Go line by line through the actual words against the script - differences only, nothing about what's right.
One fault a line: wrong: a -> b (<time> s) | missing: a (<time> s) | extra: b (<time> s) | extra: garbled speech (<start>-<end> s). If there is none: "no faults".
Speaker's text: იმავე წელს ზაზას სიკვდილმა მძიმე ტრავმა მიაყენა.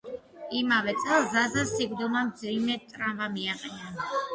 no faults